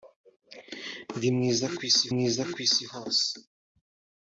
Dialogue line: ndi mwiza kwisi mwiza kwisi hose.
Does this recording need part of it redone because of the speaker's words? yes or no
no